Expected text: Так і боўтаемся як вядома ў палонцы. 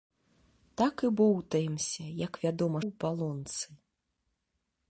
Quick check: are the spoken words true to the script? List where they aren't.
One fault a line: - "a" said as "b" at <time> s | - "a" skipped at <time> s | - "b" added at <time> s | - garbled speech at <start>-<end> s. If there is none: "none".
none